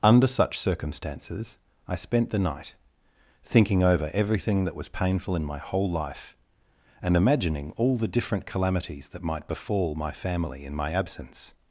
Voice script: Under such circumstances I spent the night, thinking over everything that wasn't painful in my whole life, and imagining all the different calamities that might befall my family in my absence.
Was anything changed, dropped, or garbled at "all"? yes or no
no